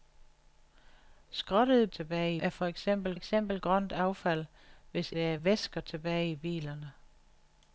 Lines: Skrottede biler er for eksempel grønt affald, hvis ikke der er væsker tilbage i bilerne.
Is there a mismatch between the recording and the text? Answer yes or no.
yes